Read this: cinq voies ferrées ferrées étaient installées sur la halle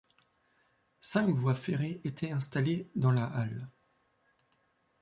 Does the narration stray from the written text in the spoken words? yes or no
yes